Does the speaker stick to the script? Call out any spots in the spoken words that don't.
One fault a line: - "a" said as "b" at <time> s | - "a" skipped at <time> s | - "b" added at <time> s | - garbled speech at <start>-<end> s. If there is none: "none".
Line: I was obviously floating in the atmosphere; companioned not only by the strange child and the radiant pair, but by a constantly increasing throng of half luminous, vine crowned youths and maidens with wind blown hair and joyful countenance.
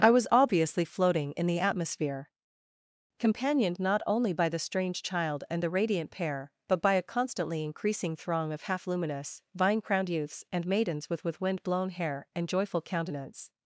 - "with" added at 11.2 s